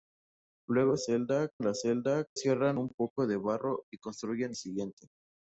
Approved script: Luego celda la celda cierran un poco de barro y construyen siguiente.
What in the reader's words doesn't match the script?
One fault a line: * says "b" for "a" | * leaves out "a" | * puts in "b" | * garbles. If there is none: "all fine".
all fine